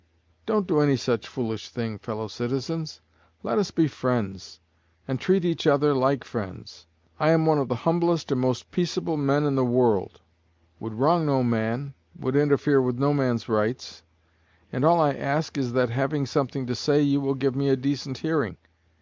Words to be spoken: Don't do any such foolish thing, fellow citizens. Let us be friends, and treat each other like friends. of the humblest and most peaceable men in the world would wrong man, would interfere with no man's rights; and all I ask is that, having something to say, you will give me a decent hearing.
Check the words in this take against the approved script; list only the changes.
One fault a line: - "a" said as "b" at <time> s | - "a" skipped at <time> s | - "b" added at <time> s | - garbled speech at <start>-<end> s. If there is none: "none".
- "I am one" added at 7.2 s
- "no" added at 11.2 s